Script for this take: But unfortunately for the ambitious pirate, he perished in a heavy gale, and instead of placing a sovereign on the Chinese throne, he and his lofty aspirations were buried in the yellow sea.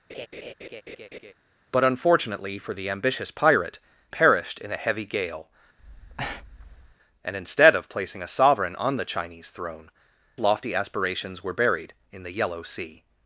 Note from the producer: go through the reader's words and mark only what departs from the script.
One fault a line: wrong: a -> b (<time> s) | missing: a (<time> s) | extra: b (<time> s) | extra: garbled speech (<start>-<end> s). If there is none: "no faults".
missing: he (3.8 s)
missing: he and his (9.9 s)